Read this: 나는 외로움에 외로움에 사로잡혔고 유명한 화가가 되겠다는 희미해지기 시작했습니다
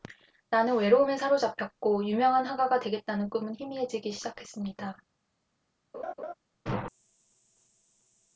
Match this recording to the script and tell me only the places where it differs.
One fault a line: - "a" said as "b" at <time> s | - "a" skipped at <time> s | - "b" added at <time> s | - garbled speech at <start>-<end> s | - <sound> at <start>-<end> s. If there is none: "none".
- "외로움에" skipped at 1.2 s
- "꿈은" added at 3.3 s
- laugh at 5.9-6.3 s